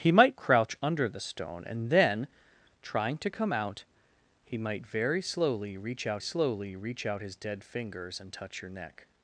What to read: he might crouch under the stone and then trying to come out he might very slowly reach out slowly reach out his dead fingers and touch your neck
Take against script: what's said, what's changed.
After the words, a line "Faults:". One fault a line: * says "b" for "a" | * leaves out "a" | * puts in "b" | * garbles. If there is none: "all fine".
he might crouch under the stone and then trying to come out he might very slowly reach out slowly reach out his dead fingers and touch your neck
Faults:
all fine